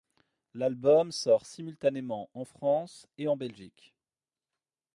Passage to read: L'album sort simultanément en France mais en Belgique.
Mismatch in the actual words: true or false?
true